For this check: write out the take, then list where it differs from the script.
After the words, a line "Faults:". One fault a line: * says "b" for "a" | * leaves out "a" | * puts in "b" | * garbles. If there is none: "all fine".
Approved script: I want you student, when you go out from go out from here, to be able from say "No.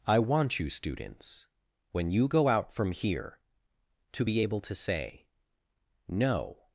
I want you students, when you go out from here, to be able to say "No.
Faults:
* says "students" for "student"
* leaves out "go out from"
* says "to" for "from"